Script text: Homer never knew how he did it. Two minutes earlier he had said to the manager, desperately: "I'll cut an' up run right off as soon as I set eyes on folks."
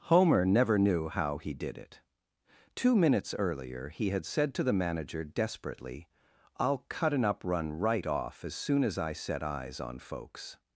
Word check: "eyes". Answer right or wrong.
right